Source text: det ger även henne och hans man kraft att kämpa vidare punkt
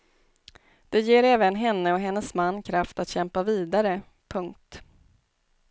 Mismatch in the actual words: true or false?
true